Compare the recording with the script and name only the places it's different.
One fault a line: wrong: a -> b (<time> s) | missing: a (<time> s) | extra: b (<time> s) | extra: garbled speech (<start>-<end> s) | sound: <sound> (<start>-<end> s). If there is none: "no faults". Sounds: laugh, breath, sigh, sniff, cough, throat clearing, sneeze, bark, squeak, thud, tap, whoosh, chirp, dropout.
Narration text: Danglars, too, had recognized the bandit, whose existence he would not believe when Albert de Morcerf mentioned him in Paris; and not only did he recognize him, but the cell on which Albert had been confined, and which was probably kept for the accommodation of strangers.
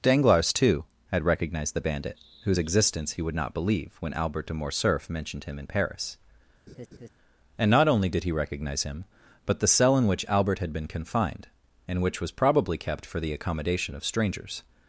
sound: laugh (6.7-7.1 s)
wrong: on -> in (10.0 s)